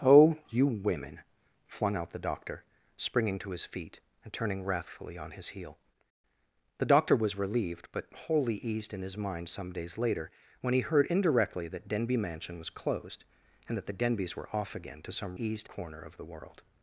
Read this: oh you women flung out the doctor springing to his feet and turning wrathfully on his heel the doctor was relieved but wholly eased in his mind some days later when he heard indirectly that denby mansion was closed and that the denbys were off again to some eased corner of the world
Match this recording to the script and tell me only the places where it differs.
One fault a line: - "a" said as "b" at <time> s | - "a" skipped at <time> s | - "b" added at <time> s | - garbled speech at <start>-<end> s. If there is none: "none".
none